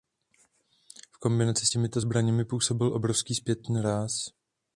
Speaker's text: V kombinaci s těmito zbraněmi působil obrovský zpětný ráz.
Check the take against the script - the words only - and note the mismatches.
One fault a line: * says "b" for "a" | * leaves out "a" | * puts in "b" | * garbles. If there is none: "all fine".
all fine